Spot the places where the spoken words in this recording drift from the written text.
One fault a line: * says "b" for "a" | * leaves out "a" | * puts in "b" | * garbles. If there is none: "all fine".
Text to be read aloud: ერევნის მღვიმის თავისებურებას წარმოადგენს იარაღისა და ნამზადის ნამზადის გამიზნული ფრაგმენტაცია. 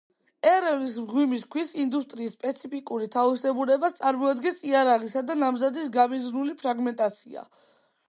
* puts in "ქვის ინდუსტრიის სპეციფიკური"
* leaves out "ნამზადის"